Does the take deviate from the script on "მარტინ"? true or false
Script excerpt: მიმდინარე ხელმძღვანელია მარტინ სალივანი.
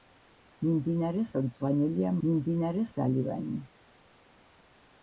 true